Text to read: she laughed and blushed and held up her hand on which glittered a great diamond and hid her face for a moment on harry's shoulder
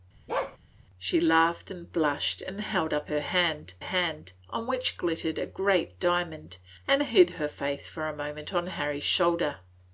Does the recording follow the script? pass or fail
fail